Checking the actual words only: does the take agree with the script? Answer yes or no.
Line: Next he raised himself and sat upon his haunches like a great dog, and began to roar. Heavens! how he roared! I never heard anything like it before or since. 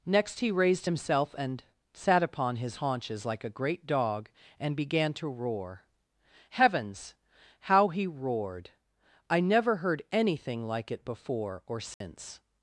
yes